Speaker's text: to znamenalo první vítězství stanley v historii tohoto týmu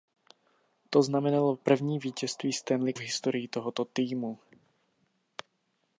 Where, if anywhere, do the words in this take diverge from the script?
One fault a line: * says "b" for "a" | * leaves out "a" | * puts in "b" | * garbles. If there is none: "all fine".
all fine